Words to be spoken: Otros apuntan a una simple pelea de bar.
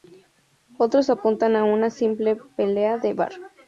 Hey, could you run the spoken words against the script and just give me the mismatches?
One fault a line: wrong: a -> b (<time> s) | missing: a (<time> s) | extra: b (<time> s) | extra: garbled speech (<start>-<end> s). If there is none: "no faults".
no faults